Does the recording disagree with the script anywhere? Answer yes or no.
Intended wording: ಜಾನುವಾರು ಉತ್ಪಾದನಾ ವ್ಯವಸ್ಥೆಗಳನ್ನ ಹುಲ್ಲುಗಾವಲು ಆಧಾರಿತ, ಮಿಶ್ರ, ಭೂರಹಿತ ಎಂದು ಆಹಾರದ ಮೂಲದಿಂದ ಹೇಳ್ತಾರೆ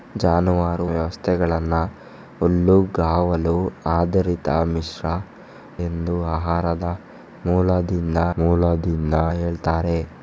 yes